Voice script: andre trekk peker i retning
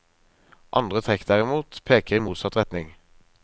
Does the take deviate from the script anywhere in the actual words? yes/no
yes